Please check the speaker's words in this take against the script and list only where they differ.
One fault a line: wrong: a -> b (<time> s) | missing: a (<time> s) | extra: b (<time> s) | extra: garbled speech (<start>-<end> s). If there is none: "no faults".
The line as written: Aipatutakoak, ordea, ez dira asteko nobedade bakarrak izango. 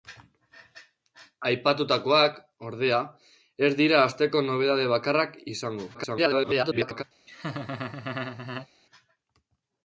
extra: garbled speech (5.9-7.0 s)